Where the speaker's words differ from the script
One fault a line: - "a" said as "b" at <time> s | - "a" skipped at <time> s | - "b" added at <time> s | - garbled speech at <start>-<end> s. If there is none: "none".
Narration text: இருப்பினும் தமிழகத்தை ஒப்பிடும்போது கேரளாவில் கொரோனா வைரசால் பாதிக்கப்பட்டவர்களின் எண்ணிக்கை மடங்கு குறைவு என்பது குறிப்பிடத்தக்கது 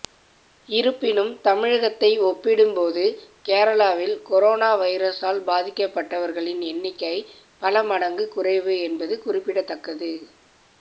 - "பல" added at 7.6 s